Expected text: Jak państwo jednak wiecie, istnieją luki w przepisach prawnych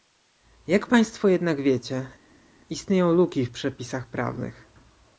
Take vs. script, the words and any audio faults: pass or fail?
pass